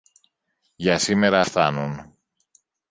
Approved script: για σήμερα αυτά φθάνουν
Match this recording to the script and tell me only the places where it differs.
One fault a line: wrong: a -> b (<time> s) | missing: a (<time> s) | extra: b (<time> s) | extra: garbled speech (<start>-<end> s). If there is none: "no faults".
missing: αυτά (1.4 s)